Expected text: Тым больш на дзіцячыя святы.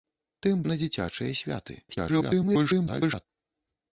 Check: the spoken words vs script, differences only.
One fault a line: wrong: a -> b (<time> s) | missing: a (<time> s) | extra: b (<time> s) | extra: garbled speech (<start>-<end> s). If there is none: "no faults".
missing: больш (0.6 s)
extra: garbled speech (1.9-3.3 s)